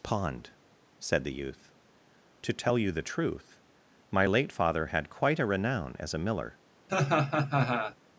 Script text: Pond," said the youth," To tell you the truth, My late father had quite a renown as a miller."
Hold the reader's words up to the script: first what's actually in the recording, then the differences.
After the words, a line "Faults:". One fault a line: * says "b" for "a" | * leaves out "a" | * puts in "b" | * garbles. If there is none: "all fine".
Pond," said the youth," To tell you the truth, My late father had quite a renown as a miller."
Faults:
all fine